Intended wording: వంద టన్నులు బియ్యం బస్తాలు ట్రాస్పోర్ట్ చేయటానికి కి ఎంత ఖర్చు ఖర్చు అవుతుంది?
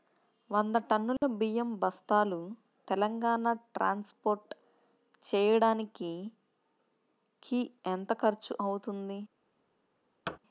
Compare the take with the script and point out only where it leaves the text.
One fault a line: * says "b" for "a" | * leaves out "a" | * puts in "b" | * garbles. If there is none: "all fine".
* puts in "తెలంగాణ"
* leaves out "ఖర్చు"